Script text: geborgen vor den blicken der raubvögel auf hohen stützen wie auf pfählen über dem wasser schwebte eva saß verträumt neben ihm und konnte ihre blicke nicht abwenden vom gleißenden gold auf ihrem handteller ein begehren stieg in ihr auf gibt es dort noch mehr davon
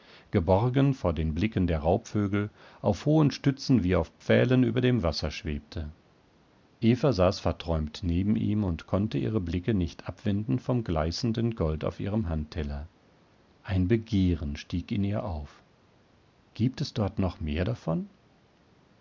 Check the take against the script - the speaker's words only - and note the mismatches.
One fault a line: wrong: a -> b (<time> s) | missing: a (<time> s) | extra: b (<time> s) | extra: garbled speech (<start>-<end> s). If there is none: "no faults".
no faults